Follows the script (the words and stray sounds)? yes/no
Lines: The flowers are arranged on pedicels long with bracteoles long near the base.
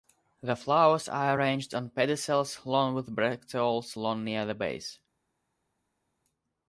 yes